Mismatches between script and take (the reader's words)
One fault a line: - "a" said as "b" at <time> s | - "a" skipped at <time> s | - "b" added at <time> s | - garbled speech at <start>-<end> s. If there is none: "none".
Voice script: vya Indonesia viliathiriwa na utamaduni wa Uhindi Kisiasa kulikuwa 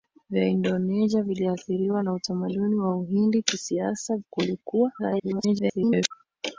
- garbled speech at 5.0-6.1 s